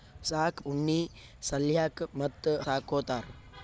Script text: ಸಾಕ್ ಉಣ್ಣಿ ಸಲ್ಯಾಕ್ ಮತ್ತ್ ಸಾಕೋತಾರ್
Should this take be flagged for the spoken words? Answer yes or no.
no